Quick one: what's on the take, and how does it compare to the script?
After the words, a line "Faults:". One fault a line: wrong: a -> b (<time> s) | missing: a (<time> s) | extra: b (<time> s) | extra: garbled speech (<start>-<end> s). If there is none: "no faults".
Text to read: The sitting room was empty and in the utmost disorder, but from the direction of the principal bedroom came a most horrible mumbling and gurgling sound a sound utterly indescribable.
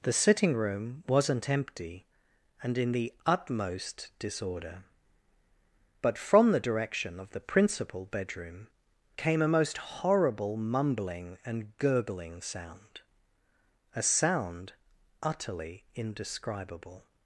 The sitting room wasn't empty and in the utmost disorder, but from the direction of the principal bedroom came a most horrible mumbling and gurgling sound a sound utterly indescribable.
Faults:
wrong: was -> wasn't (1.1 s)